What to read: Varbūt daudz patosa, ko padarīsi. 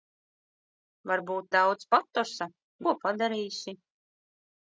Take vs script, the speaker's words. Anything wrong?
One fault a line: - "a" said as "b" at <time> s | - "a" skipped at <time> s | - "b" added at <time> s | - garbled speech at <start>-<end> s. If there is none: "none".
none